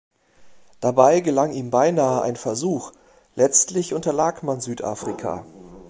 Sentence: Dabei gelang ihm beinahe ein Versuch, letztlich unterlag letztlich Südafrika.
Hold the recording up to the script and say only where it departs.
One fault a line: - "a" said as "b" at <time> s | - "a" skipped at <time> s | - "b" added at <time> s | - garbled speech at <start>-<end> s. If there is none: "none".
- "letztlich" said as "man" at 4.4 s